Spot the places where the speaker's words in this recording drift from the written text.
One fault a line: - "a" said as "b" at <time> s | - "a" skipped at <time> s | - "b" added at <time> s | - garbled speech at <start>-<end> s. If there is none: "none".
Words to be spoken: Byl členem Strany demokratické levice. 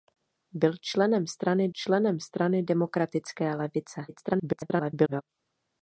- "členem Strany" added at 1.7 s
- garbled speech at 4.1-5.2 s